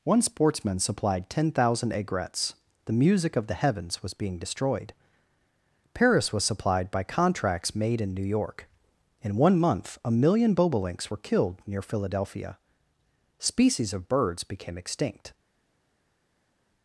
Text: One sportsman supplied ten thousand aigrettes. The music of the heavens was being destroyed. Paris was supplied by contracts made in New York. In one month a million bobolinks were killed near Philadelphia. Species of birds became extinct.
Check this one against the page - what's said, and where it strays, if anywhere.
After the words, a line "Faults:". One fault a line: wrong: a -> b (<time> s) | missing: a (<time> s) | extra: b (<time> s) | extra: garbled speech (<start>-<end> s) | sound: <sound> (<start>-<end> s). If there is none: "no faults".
One sportsman supplied ten thousand aigrettes. The music of the heavens was being destroyed. Paris was supplied by contracts made in New York. In one month a million bobolinks were killed near Philadelphia. Species of birds became extinct.
Faults:
no faults